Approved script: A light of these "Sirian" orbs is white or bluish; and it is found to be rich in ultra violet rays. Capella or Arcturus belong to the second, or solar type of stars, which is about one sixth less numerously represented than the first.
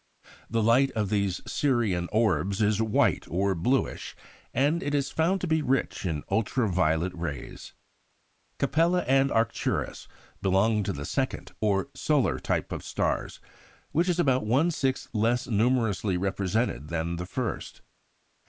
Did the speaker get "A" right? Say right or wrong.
wrong